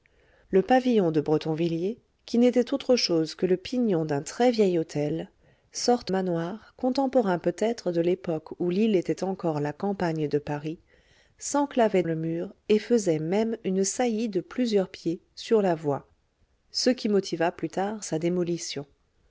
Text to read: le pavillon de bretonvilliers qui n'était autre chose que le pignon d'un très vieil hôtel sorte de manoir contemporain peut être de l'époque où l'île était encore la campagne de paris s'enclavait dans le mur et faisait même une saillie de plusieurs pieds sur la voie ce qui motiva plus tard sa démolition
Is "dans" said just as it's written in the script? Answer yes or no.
no